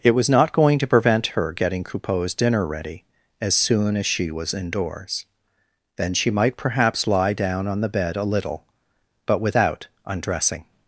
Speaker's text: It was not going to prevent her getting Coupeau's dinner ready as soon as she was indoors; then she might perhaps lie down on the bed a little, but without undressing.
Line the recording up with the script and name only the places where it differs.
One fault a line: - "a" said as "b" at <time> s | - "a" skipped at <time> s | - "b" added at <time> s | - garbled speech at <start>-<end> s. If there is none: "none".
none